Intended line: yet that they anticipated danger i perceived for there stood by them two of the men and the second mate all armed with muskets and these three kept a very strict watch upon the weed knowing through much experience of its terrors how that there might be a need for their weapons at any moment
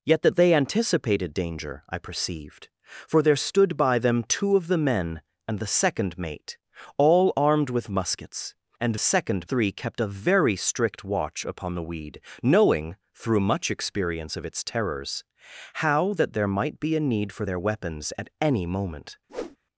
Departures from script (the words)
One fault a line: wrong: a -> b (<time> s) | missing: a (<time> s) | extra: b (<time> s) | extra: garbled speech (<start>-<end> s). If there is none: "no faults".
wrong: these -> second (9.0 s)